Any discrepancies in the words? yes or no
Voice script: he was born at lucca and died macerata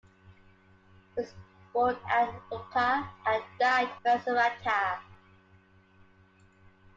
no